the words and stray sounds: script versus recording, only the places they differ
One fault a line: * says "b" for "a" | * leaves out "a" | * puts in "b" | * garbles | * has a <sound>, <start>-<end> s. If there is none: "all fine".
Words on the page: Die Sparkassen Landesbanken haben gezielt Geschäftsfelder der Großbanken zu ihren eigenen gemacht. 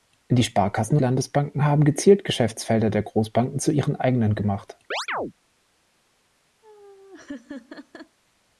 * has a chirp, 4.9-5.3 s
* has a laugh, 6.6-8.2 s